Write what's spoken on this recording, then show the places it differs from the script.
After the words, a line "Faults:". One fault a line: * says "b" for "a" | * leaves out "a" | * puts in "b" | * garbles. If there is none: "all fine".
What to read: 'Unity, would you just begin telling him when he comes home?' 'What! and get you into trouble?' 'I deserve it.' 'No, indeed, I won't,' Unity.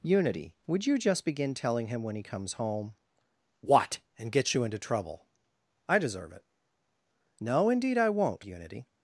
'Unity, would you just begin telling him when he comes home?' 'What! and get you into trouble?' 'I deserve it.' 'No, indeed, I won't,' Unity.
Faults:
all fine